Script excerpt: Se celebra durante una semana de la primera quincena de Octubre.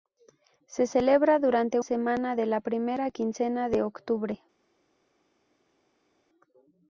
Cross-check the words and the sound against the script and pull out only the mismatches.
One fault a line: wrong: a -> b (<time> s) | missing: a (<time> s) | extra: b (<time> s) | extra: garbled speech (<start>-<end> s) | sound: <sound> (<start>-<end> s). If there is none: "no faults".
missing: una (1.8 s)